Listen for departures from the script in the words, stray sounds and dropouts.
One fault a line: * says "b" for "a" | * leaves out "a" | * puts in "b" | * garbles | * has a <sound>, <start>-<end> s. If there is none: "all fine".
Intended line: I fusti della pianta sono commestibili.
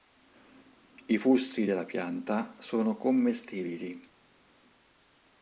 all fine